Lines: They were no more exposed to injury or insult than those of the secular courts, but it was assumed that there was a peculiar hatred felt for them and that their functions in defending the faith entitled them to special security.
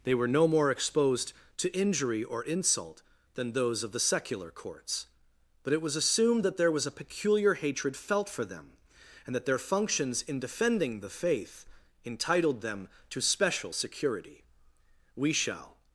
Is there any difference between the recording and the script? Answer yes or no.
yes